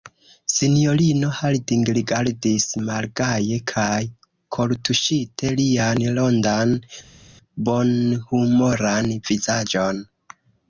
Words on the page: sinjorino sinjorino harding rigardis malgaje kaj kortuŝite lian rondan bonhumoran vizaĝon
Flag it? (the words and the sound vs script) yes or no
yes